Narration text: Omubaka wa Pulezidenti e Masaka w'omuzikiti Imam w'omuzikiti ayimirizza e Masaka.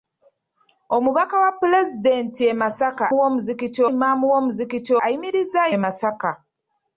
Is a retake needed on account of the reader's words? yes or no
no